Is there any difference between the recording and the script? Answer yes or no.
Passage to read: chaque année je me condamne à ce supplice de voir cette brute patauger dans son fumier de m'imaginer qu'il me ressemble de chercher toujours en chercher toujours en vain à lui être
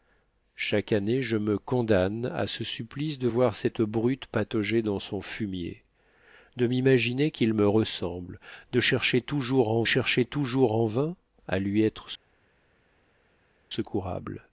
no